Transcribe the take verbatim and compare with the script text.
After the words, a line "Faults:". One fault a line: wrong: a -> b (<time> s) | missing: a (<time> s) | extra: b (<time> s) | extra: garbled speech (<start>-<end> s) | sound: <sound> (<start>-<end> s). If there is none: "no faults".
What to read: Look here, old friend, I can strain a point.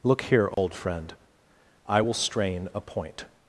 Look here, old friend, I will strain a point.
Faults:
sound: dropout (0.5-0.6 s)
wrong: can -> will (2.0 s)